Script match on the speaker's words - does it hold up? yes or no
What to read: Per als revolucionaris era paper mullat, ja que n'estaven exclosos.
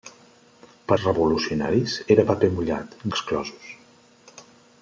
no